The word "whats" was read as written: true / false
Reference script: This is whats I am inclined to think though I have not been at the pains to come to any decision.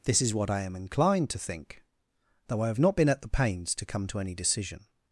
false